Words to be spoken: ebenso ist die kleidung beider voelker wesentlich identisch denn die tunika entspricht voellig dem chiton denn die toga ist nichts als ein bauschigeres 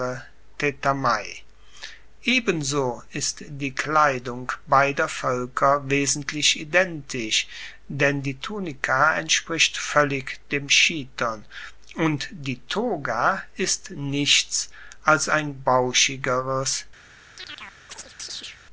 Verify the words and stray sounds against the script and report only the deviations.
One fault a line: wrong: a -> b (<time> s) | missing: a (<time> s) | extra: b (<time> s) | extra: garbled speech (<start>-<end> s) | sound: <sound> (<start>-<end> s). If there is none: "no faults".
wrong: denn -> und (12.0 s)
sound: chirp (17.4-18.6 s)